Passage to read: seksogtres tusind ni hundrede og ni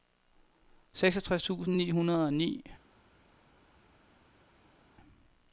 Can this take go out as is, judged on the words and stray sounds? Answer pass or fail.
pass